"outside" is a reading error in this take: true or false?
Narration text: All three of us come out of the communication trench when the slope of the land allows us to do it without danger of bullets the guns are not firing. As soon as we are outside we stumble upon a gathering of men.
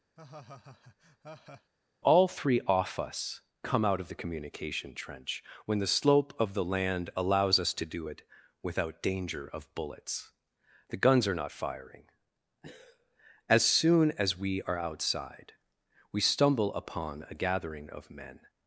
false